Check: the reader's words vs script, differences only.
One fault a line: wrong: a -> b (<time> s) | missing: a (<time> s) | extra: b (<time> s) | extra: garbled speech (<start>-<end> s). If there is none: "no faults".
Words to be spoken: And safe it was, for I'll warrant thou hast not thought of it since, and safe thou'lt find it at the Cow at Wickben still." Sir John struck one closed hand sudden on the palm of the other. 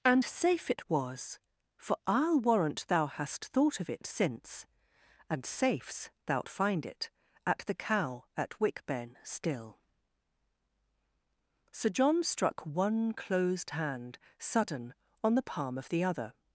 missing: not (3.5 s)
wrong: safe -> safes (5.5 s)